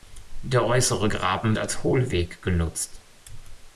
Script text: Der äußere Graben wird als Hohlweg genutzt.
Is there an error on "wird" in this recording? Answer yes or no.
yes